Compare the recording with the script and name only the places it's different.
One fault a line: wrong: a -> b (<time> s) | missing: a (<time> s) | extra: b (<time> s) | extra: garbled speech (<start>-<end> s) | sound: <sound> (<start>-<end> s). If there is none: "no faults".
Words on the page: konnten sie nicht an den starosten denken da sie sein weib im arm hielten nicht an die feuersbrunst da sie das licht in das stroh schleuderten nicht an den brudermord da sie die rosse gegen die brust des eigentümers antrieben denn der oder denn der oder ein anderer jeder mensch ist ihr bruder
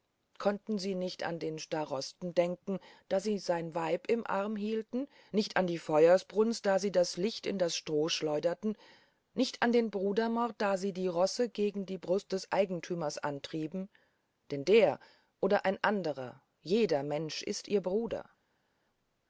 missing: denn der oder (15.7 s)